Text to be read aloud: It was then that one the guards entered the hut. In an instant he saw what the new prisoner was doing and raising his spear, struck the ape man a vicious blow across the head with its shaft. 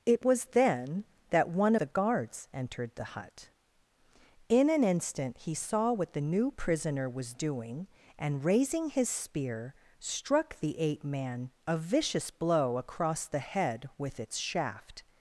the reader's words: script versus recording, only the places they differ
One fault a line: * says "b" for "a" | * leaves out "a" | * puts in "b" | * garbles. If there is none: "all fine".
all fine